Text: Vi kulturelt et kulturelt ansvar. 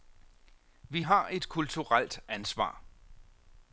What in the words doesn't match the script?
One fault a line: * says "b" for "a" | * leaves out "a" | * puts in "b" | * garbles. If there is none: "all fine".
* says "har" for "kulturelt"